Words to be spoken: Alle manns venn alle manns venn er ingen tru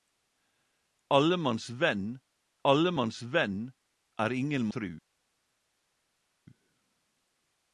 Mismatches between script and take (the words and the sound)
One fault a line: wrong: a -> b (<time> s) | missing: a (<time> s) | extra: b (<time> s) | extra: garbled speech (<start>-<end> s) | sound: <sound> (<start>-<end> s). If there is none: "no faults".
no faults